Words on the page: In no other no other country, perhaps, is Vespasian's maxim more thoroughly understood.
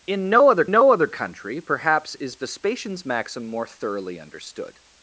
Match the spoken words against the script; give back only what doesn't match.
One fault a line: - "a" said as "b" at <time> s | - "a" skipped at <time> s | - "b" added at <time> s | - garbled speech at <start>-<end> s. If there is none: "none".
none